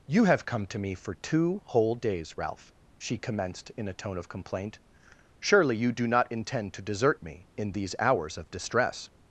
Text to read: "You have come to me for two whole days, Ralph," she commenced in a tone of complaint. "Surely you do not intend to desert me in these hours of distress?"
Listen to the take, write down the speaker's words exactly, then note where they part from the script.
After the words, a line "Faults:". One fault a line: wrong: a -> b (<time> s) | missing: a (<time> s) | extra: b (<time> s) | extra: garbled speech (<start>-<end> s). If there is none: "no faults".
"You have come to me for two whole days, Ralph," she commenced in a tone of complaint. "Surely you do not intend to desert me in these hours of distress?"
Faults:
no faults